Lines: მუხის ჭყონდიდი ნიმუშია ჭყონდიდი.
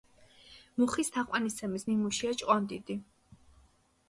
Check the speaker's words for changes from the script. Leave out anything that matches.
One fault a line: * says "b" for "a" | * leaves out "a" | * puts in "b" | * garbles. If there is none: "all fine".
* says "თაყვანისცემის" for "ჭყონდიდი"